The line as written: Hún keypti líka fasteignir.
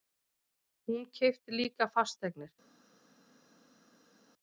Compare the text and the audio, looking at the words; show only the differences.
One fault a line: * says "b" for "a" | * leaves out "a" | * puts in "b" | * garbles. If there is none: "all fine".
all fine